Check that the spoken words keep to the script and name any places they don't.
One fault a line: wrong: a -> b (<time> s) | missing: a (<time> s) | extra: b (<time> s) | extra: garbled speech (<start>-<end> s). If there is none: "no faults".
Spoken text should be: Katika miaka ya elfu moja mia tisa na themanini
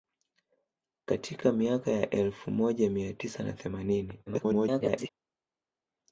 extra: garbled speech (4.3-5.1 s)